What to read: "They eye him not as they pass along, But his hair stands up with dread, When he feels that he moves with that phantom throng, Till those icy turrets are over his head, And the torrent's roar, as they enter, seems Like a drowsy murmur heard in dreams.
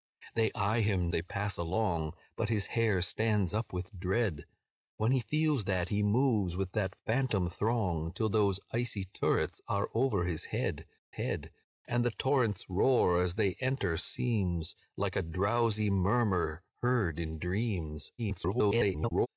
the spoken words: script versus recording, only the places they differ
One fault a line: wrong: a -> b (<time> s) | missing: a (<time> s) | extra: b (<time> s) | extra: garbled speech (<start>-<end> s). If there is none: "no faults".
missing: not as (1.1 s)
extra: head (11.1 s)
extra: garbled speech (18.2-19.3 s)